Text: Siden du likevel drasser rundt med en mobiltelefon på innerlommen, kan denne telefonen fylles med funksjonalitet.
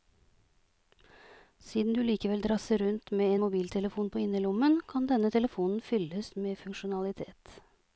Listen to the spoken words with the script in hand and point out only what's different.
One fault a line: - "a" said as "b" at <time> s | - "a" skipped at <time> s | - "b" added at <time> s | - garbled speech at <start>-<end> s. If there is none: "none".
none